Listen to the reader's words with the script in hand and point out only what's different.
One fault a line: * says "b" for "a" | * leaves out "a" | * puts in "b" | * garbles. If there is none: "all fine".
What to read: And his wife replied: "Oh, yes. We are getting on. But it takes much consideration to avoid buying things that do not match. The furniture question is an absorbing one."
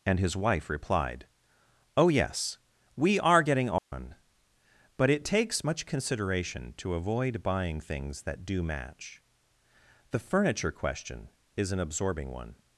* leaves out "not"